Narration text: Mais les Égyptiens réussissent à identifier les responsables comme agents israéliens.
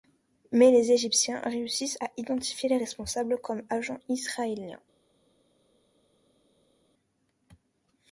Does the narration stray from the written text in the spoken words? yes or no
no